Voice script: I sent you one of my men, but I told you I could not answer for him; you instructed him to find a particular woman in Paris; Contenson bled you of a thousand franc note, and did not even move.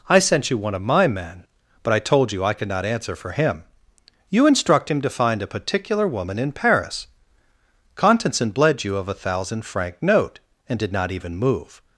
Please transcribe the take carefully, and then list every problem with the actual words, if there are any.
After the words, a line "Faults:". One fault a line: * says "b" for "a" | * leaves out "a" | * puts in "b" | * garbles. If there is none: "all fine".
I sent you one of my men, but I told you I could not answer for him; you instruct him to find a particular woman in Paris; Contenson bled you of a thousand franc note, and did not even move.
Faults:
* says "instruct" for "instructed"